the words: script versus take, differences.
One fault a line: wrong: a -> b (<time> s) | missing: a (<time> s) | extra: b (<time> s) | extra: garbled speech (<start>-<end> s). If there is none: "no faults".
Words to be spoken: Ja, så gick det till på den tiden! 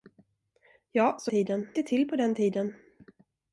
wrong: gick -> tiden (1.3 s)